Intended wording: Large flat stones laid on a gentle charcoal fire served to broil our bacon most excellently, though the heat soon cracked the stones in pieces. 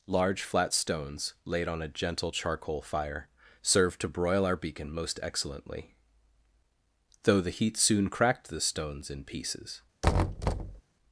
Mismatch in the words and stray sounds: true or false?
true